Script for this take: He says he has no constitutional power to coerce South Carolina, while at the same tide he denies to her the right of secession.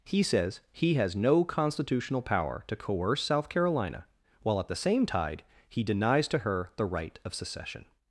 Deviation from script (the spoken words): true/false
false